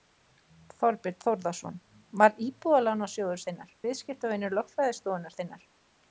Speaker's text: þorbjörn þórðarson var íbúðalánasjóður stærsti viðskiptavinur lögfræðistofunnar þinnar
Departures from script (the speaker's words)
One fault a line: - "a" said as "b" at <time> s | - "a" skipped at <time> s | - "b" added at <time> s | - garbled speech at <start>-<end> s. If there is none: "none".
- "stærsti" said as "þinnar" at 3.5 s